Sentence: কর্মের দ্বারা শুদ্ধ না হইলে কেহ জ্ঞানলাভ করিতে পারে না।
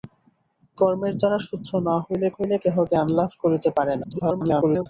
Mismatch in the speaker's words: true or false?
true